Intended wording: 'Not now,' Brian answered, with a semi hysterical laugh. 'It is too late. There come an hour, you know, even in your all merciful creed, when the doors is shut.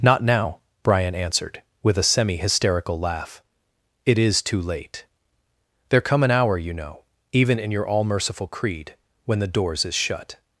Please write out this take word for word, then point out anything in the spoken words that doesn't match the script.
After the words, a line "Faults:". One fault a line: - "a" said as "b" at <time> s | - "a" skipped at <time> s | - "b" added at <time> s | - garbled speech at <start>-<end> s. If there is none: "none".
'Not now,' Brian answered, with a semi hysterical laugh. 'It is too late. There come an hour, you know, even in your all merciful creed, when the doors is shut.
Faults:
none